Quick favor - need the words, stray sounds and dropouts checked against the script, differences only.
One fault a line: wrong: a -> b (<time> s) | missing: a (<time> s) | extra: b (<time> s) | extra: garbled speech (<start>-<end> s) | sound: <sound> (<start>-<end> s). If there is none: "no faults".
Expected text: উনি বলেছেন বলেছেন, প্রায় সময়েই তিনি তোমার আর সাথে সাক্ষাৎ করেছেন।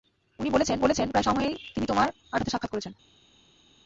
no faults